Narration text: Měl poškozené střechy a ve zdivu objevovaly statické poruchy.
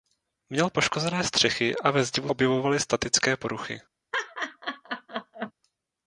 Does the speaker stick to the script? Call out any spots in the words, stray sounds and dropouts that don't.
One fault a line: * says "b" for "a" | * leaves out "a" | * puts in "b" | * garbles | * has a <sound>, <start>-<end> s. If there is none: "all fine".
* has a laugh, 4.1-5.5 s